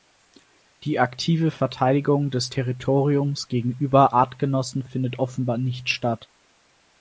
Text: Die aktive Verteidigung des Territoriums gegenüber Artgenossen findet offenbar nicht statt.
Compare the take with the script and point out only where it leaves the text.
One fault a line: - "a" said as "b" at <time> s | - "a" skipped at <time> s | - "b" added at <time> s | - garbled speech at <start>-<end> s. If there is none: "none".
none